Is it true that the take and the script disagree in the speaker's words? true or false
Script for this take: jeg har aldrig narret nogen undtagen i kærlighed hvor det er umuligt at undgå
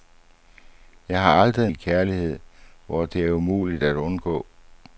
true